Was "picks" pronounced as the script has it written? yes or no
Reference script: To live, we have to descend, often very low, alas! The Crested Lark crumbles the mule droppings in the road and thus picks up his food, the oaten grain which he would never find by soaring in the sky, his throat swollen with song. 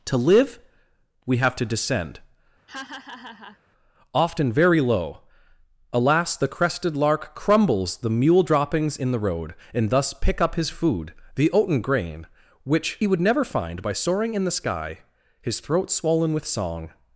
no